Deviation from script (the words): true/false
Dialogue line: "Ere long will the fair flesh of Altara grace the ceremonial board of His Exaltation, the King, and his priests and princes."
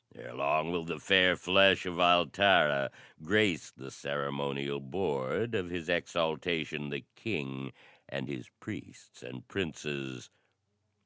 false